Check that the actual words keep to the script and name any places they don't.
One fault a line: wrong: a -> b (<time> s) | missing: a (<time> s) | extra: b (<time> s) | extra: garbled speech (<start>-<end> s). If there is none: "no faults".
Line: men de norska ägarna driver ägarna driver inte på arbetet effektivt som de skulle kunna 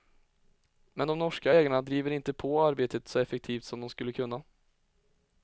missing: ägarna driver (2.1 s)
extra: så (3.1 s)